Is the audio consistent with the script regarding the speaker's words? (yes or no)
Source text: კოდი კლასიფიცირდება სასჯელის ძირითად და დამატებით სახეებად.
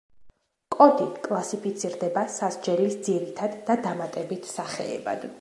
yes